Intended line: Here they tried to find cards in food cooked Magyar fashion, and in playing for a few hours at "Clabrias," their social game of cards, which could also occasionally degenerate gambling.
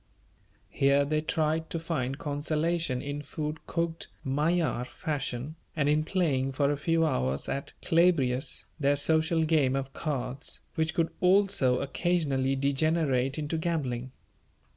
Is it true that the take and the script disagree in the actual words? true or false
true